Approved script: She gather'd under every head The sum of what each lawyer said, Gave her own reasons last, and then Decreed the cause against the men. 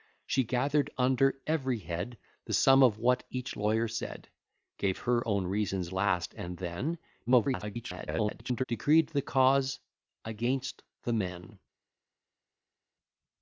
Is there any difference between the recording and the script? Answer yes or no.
yes